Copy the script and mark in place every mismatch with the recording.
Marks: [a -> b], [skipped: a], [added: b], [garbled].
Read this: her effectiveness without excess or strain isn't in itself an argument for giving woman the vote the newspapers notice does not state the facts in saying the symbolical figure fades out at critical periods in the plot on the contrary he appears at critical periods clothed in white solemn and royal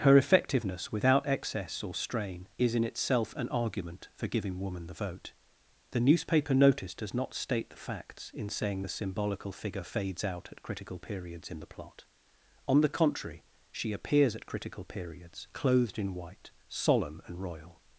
her effectiveness without excess or strain [isn't -> is] in itself an argument for giving woman the vote the [newspapers -> newspaper] notice does not state the facts in saying the symbolical figure fades out at critical periods in the plot on the contrary [he -> she] appears at critical periods clothed in white solemn and royal